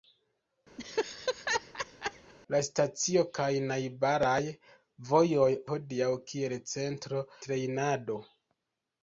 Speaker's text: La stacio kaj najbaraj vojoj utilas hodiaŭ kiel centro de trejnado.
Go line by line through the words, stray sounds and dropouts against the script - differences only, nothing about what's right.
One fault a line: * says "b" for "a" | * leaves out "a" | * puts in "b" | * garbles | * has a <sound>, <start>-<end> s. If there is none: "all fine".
* has a laugh, 0.8-2.3 s
* leaves out "utilas"
* leaves out "de"